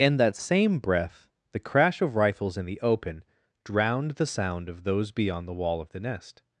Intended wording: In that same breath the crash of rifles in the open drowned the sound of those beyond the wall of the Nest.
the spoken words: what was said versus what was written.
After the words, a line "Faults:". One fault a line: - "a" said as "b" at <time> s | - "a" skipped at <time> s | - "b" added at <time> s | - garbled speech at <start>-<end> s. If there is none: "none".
In that same breath the crash of rifles in the open drowned the sound of those beyond the wall of the Nest.
Faults:
none